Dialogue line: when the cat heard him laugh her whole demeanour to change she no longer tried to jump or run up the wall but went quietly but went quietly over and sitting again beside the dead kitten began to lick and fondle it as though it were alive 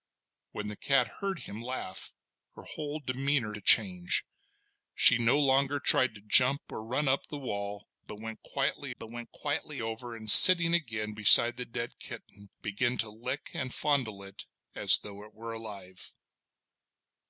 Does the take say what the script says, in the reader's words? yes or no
yes